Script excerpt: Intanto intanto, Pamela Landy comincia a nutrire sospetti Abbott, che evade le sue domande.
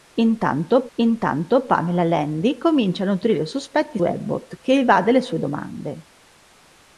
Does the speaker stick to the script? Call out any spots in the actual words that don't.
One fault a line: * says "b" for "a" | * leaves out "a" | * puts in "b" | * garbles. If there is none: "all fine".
all fine